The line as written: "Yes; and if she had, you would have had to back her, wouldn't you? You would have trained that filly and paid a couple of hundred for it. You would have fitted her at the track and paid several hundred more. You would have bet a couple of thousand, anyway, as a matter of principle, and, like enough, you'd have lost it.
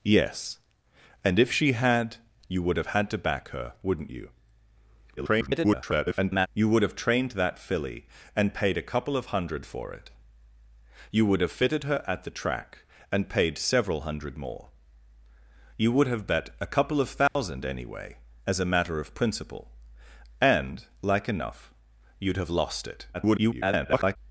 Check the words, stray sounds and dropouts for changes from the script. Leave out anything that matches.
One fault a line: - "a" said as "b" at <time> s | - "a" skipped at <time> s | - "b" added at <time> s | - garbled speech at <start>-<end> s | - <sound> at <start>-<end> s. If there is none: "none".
- garbled speech at 5.2-6.5 s
- dropout at 17.3-17.4 s
- garbled speech at 23.1-24.2 s